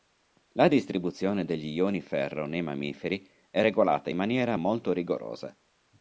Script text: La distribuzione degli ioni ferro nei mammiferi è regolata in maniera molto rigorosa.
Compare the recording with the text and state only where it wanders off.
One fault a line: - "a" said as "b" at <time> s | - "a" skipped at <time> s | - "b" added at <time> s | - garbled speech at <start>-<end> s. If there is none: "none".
none